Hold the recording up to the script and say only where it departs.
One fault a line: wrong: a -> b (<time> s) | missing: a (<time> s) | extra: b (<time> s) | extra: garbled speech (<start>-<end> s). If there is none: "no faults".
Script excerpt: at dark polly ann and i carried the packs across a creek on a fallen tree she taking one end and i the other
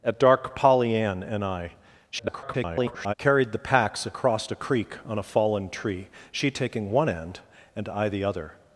extra: garbled speech (2.1-3.1 s)